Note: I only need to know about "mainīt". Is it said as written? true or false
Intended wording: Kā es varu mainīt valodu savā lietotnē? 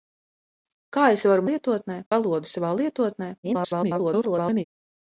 false